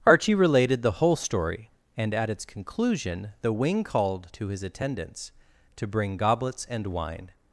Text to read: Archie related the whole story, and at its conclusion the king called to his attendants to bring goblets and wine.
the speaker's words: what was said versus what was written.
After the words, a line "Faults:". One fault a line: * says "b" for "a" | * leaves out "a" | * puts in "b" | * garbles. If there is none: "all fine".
Archie related the whole story, and at its conclusion the wing called to his attendants to bring goblets and wine.
Faults:
* says "wing" for "king"